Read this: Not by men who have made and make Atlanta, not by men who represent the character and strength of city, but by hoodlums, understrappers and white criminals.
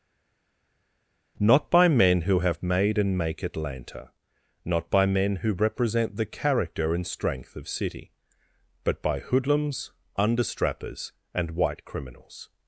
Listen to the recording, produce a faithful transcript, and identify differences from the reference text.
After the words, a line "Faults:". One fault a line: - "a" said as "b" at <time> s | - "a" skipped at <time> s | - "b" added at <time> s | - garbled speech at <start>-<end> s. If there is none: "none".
Not by men who have made and make Atlanta, not by men who represent the character and strength of city, but by hoodlums, understrappers and white criminals.
Faults:
none